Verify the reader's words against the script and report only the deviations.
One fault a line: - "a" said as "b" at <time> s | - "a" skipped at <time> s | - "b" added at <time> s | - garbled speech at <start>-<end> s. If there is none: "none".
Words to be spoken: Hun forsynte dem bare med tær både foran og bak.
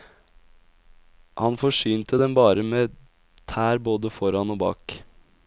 - "Hun" said as "Han" at 1.4 s